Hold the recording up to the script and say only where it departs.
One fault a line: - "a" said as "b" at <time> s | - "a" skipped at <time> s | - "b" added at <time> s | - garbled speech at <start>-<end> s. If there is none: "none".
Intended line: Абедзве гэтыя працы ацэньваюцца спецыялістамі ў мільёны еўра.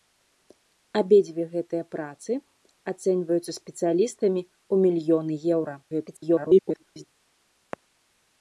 - garbled speech at 5.8-7.0 s